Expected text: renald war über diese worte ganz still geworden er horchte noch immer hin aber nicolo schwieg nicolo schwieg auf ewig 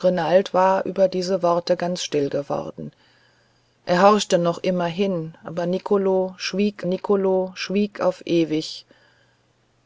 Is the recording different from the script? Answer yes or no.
no